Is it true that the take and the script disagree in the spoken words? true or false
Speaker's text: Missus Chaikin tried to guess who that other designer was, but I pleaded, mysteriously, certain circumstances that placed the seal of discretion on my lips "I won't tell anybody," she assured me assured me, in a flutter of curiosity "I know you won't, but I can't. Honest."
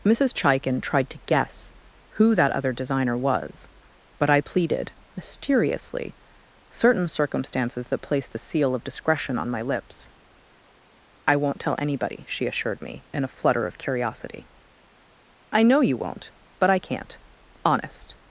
true